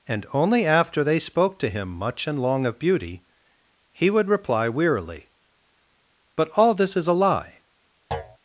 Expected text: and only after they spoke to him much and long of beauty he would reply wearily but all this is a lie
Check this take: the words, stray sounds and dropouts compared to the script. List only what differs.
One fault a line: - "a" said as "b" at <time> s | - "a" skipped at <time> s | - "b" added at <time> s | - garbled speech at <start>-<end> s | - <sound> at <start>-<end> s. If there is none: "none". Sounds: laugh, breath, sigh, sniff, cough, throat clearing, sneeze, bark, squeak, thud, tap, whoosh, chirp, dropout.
- thud at 8.1-8.4 s